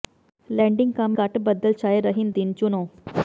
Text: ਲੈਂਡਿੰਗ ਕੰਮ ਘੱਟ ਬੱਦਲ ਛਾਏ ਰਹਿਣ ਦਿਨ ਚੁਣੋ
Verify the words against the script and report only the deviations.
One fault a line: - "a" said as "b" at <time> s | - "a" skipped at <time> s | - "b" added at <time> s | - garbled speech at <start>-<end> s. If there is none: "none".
none